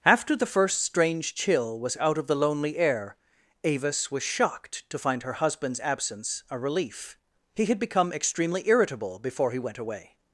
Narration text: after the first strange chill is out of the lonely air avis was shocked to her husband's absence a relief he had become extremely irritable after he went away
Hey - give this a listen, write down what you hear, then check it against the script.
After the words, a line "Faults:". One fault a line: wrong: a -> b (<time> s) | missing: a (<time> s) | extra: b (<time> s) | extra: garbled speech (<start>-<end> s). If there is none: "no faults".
after the first strange chill was out of the lonely air avis was shocked to find her husband's absence a relief he had become extremely irritable before he went away
Faults:
wrong: is -> was (1.8 s)
extra: find (5.0 s)
wrong: after -> before (9.2 s)